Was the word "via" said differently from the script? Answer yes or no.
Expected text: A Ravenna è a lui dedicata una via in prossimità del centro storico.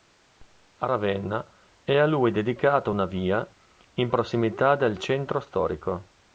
no